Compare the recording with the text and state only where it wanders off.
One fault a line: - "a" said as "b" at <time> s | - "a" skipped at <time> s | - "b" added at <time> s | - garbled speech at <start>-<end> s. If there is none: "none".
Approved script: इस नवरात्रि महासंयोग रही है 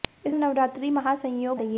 none